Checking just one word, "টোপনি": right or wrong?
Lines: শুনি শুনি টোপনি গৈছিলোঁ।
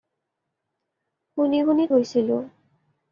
wrong